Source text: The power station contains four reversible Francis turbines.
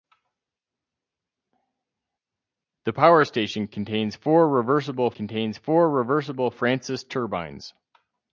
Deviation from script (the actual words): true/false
true